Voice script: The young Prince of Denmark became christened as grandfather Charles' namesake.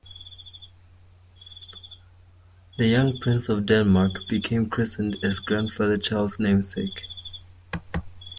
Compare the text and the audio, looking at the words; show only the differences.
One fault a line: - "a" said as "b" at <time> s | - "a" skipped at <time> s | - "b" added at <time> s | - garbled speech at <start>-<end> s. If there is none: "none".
none